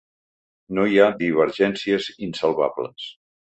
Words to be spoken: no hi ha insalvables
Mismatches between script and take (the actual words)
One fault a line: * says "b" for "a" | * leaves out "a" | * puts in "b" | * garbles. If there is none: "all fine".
* puts in "divergències"